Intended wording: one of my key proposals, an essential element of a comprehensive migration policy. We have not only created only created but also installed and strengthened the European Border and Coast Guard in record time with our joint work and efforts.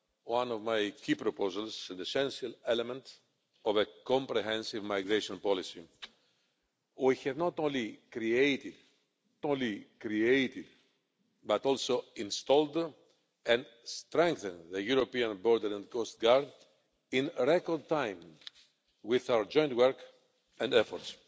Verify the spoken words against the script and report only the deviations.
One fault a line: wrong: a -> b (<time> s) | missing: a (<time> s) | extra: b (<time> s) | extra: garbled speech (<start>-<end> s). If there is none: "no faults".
no faults